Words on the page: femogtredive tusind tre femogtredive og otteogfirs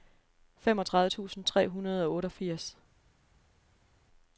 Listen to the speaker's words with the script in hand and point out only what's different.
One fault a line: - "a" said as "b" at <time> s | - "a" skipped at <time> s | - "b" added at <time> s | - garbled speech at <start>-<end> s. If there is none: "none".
- "femogtredive" said as "hundrede" at 1.7 s